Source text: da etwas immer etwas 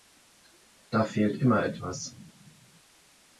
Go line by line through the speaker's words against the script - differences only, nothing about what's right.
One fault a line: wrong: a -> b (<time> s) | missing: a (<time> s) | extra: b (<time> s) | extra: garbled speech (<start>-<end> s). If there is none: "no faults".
wrong: etwas -> fehlt (1.0 s)